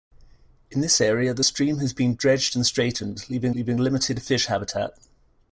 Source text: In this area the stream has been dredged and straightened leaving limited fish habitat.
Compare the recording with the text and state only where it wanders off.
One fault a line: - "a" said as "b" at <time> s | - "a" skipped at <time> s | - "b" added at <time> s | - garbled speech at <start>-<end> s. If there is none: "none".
- "leaving" added at 3.5 s